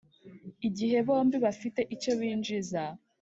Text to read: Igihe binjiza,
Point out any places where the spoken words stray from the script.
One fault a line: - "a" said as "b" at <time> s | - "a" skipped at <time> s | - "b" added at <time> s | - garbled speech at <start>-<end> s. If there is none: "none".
- "bombi bafite icyo" added at 1.1 s